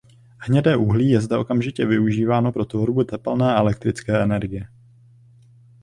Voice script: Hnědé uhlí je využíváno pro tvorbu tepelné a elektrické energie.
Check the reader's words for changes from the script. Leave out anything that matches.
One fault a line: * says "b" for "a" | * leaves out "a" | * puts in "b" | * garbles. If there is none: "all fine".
* puts in "zde okamžitě"